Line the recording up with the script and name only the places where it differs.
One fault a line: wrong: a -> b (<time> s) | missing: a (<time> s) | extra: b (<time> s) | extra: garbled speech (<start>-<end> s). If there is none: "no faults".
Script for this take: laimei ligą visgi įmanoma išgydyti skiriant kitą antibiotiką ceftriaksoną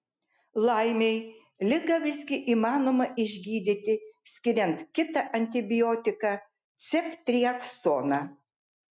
no faults